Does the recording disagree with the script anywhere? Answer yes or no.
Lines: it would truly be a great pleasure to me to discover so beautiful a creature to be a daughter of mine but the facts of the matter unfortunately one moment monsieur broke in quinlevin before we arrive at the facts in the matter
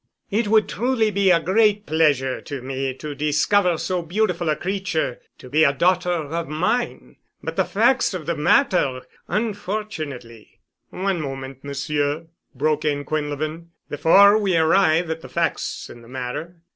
no